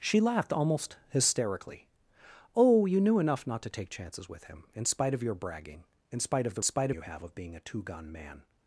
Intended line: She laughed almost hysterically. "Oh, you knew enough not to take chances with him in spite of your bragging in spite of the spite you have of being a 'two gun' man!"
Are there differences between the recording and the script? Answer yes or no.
no